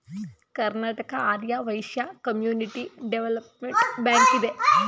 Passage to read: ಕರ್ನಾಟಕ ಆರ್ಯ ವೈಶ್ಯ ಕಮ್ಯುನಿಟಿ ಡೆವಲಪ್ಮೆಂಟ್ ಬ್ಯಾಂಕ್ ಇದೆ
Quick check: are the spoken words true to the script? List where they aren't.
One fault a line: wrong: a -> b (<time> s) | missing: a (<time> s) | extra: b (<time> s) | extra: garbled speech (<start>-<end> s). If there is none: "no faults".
no faults